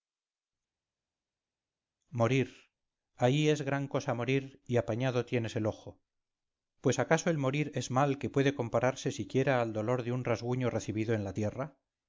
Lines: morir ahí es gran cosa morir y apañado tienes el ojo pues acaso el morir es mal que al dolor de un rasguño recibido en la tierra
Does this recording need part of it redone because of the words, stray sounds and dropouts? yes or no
yes